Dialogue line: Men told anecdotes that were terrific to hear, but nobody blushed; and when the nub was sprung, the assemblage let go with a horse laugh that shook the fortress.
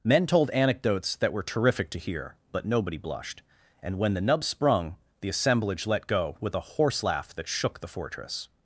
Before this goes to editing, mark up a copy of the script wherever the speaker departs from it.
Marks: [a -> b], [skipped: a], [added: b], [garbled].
Men told anecdotes that were terrific to hear, but nobody blushed; and when the nub [skipped: was] sprung, the assemblage let go with a horse laugh that shook the fortress.